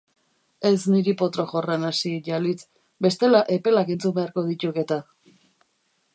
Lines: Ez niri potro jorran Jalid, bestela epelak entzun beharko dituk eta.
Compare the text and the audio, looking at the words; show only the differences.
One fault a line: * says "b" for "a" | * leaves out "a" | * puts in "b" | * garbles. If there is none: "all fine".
* puts in "hasi"